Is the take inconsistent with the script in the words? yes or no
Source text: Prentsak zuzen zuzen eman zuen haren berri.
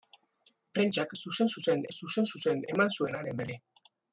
yes